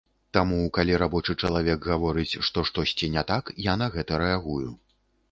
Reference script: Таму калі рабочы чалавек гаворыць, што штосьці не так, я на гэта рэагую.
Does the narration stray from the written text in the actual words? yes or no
no